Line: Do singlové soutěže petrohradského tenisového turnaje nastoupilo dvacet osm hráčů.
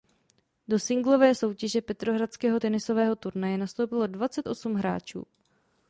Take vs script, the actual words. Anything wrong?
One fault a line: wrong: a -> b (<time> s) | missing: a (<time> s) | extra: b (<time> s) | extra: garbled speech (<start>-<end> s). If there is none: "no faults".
no faults